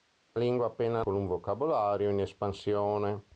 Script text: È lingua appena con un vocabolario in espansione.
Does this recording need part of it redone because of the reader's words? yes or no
no